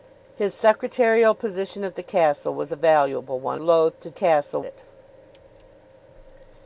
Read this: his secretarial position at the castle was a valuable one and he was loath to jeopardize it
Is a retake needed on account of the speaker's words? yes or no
yes